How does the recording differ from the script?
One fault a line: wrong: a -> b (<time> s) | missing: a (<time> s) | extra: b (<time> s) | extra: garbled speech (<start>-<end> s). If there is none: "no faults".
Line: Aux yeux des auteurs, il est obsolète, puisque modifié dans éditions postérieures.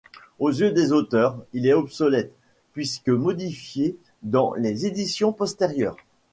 extra: les (4.5 s)